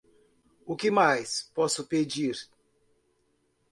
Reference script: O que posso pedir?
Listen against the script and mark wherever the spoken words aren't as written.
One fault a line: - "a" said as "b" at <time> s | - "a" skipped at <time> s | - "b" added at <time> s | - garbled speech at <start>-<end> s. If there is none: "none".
- "mais" added at 0.9 s